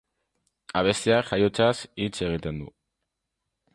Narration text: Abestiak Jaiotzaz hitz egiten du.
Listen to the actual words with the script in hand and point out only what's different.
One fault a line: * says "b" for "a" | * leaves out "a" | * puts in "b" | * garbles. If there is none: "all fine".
all fine